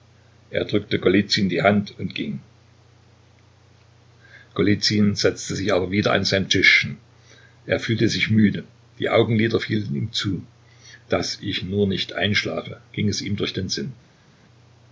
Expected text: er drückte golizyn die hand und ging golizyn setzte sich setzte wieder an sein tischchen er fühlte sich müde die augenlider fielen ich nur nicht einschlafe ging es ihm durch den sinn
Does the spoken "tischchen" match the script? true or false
true